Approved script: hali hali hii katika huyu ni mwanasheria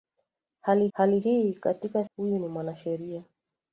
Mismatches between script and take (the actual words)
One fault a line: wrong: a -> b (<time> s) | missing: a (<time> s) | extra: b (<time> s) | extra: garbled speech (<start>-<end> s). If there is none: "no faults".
no faults